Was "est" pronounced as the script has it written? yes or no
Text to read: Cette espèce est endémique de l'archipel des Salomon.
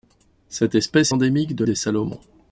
no